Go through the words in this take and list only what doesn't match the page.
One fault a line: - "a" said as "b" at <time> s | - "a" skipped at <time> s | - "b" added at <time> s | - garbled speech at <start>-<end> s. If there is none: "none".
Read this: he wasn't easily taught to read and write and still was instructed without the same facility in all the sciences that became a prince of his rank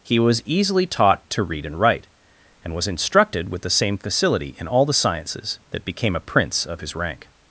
- "wasn't" said as "was" at 0.2 s
- "still" skipped at 2.8 s
- "without" said as "with" at 3.5 s